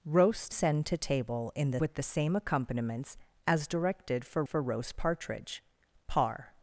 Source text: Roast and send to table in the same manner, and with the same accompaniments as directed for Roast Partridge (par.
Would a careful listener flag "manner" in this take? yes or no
yes